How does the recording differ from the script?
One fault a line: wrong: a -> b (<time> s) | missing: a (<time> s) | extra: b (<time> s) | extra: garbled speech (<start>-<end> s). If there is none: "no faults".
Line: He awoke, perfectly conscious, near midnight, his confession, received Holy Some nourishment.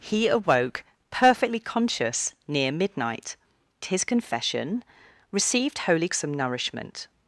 no faults